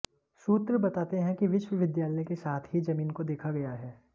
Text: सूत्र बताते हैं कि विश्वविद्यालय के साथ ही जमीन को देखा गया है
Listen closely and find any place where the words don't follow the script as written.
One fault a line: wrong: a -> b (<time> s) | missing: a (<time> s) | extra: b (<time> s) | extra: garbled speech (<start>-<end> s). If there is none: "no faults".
no faults